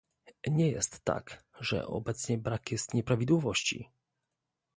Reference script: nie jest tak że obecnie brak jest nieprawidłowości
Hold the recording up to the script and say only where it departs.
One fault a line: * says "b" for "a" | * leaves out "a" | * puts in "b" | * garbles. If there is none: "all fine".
all fine